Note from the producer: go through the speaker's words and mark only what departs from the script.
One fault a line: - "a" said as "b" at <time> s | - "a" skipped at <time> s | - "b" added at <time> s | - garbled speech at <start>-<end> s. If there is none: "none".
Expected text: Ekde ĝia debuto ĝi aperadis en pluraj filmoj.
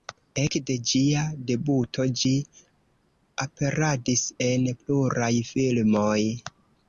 none